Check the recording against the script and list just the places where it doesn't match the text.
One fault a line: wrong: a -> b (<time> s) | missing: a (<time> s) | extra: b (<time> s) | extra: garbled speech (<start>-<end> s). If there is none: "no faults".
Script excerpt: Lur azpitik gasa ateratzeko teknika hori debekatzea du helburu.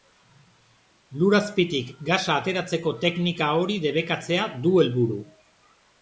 no faults